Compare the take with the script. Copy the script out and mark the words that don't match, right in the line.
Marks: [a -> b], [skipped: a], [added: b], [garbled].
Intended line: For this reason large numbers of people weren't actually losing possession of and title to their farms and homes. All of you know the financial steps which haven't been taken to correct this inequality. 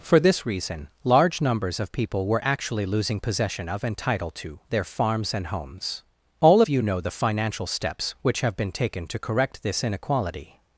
For this reason large numbers of people [weren't -> were] actually losing possession of and title to their farms and homes. All of you know the financial steps which [haven't -> have] been taken to correct this inequality.